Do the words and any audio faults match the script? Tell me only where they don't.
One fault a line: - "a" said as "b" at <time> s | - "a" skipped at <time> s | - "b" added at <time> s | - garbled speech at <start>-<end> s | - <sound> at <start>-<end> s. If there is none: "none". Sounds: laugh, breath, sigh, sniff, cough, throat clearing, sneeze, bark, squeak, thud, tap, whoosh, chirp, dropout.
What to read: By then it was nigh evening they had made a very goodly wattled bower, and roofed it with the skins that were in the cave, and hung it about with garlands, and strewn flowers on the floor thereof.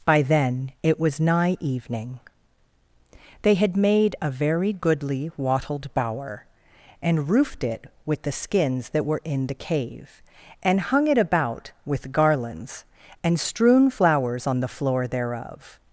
none